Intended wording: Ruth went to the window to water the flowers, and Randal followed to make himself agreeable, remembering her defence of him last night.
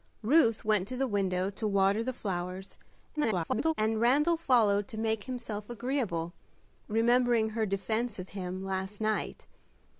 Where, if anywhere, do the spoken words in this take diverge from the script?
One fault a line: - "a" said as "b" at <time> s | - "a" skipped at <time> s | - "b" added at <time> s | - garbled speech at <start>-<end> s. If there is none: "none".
- garbled speech at 3.2-3.7 s